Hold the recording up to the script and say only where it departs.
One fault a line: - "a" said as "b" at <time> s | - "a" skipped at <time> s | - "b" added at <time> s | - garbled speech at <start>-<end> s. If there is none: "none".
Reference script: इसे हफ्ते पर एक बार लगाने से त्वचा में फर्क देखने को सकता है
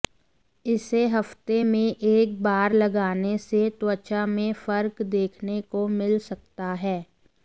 - "पर" said as "में" at 1.6 s
- "मिल" added at 5.9 s